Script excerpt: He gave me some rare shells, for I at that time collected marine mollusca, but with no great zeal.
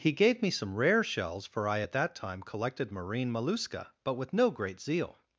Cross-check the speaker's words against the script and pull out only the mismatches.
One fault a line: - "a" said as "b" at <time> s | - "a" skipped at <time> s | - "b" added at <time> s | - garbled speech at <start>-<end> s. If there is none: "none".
none